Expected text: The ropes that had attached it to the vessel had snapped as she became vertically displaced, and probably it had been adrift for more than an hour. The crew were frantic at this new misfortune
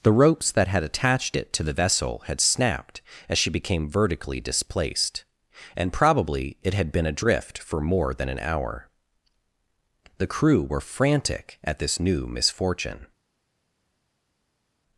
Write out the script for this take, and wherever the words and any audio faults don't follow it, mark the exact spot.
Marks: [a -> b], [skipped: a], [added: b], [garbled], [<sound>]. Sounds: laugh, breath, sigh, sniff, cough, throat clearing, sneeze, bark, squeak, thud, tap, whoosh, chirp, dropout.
The ropes that had attached it to the vessel had snapped as she became vertically displaced, and probably it had been adrift for more than an hour. The crew were frantic at this new misfortune